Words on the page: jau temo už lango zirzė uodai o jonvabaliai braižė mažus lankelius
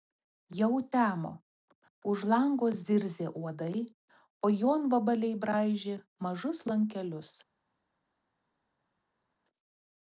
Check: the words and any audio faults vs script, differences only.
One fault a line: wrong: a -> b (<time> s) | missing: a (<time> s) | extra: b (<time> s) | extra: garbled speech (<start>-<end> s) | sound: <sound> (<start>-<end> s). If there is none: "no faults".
no faults